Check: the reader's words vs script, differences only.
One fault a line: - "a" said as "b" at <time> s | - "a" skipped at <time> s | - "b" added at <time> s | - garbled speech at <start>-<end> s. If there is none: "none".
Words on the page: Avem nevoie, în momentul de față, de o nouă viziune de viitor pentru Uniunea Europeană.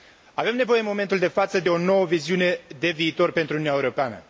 none